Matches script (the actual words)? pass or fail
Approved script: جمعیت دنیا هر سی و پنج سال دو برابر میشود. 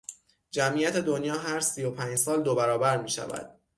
pass